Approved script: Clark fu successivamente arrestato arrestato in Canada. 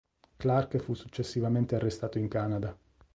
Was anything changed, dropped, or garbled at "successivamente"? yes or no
no